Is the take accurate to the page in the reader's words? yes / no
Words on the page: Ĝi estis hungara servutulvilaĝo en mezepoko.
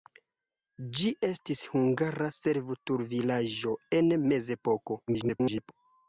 no